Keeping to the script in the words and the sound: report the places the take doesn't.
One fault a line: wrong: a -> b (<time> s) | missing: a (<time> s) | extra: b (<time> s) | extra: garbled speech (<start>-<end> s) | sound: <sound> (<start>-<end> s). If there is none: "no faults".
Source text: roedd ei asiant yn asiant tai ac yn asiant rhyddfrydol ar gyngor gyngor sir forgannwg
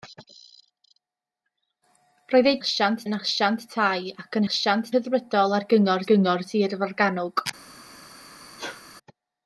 sound: sneeze (8.6-8.8 s)